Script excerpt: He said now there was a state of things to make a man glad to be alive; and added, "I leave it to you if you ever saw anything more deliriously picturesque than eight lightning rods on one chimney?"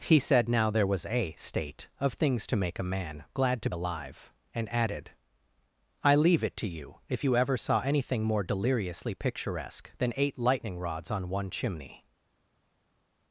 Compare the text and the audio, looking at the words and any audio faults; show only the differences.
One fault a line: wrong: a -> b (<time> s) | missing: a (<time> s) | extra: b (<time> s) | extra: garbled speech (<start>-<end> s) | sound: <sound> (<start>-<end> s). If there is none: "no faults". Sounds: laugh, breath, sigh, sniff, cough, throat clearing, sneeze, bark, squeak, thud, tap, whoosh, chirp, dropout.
missing: be (3.7 s)